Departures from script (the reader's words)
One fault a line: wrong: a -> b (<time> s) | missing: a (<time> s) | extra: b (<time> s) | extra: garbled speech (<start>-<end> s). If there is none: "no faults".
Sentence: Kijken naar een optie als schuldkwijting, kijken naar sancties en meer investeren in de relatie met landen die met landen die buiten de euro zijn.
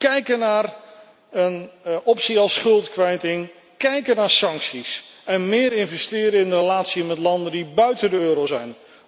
missing: met landen die (7.7 s)